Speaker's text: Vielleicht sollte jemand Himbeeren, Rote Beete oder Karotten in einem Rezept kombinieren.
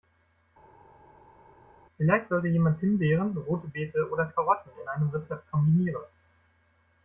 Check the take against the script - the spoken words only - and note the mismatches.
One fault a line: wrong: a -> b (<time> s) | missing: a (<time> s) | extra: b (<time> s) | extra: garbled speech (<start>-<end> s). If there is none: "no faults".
no faults